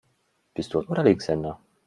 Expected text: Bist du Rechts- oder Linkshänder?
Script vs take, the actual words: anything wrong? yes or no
yes